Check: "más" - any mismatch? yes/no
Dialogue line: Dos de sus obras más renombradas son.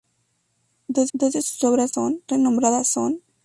yes